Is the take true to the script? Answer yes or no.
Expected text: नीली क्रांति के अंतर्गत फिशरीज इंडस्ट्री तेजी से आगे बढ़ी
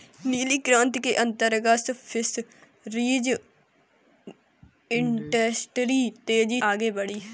no